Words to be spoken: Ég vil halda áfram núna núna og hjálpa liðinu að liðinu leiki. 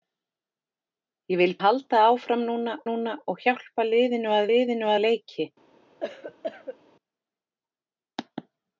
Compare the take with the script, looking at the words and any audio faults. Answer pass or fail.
fail